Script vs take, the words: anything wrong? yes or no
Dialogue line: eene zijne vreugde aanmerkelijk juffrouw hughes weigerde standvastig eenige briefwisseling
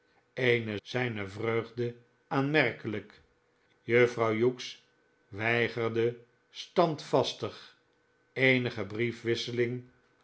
no